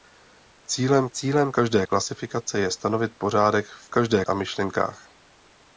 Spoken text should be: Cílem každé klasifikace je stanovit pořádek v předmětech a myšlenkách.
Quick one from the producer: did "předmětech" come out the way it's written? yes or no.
no